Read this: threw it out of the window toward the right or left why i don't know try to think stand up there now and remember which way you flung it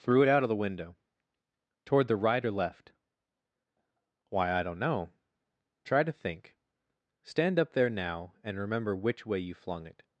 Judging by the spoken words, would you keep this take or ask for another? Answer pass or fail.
pass